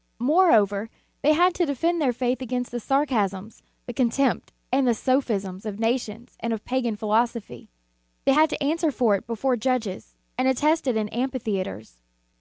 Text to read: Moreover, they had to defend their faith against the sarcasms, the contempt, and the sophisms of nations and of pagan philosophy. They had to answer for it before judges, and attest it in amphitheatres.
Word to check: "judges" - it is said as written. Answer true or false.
true